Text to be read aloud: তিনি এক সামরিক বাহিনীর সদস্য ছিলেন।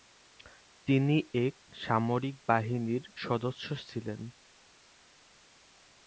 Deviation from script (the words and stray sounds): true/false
false